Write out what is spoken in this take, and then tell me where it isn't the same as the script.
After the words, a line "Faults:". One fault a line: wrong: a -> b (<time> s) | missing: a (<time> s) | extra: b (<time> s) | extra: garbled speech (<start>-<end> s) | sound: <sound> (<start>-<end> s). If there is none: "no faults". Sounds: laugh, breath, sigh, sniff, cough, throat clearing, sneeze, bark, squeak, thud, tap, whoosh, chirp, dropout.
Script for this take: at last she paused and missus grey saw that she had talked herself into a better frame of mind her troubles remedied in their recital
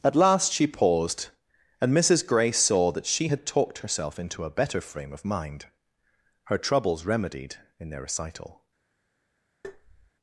at last she paused and missus grey saw that she had talked herself into a better frame of mind her troubles remedied in their recital
Faults:
sound: tap (9.6-10.1 s)